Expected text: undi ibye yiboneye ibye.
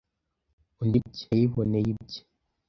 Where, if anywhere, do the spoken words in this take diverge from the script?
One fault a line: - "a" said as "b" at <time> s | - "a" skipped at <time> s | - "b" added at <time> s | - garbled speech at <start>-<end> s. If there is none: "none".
none